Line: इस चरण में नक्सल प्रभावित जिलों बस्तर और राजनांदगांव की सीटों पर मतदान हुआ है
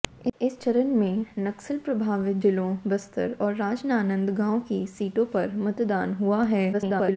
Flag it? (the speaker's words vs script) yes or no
yes